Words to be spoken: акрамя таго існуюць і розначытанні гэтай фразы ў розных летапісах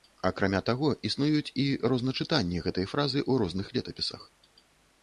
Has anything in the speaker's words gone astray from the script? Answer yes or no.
no